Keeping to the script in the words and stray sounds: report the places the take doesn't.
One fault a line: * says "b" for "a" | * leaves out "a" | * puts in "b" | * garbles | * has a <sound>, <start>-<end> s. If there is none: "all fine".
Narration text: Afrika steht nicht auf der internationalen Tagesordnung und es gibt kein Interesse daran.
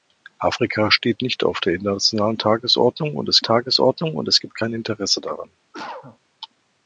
* puts in "Tagesordnung und es"
* has a cough, 5.7-6.2 s